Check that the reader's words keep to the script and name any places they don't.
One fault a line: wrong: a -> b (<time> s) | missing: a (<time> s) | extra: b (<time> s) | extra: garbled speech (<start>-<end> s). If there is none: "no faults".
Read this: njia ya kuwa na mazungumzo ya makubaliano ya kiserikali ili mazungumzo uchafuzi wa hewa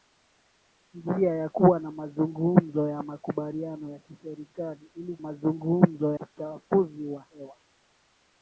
no faults